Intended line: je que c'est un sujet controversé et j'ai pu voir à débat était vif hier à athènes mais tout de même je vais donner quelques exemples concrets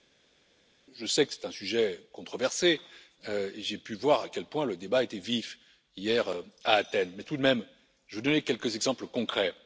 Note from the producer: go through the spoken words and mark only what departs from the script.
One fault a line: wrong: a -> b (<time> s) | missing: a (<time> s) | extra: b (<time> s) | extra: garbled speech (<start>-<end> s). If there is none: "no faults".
extra: sais (1.0 s)
extra: quel point le (4.3 s)